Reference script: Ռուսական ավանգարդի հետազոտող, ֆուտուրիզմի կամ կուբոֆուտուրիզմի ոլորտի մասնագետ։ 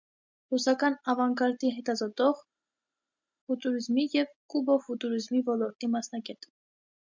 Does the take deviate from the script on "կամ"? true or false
true